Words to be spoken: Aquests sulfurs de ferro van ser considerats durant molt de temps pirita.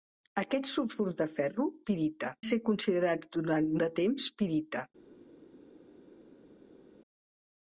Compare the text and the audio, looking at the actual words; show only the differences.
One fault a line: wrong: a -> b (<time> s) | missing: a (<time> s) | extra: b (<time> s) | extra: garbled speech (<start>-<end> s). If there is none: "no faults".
wrong: van -> pirita (1.9 s)
missing: molt (3.7 s)